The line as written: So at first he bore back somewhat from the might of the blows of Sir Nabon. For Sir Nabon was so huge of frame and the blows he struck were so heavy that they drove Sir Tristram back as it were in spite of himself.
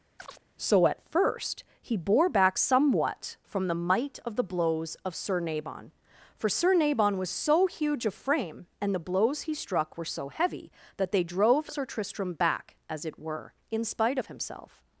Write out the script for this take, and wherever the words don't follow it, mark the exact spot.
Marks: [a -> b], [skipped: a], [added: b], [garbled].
So at first he bore back somewhat from the might of the blows of Sir Nabon. For Sir Nabon was so huge of frame and the blows he struck were so heavy that they drove Sir Tristram back as it were in spite of himself.